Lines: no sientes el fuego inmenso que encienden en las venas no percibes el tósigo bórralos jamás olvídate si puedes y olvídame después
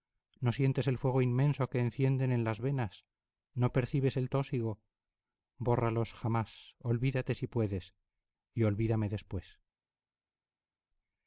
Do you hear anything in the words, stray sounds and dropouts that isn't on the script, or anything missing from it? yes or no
no